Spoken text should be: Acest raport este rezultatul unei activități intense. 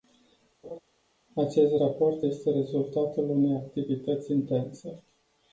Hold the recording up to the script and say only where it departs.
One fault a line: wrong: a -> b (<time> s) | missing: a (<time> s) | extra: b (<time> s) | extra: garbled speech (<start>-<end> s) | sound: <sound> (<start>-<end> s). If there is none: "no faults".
sound: laugh (0.6-0.8 s)